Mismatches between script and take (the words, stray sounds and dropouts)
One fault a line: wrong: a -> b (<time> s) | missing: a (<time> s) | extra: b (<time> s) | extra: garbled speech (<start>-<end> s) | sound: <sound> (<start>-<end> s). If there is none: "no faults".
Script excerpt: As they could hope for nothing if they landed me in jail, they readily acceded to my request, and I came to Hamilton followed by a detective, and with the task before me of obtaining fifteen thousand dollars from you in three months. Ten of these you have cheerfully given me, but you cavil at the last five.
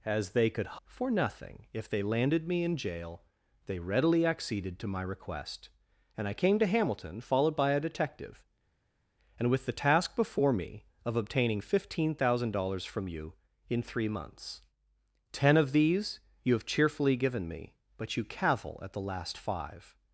missing: hope (0.8 s)